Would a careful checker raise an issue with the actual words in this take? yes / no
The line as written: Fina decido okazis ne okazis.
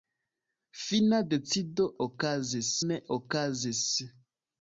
no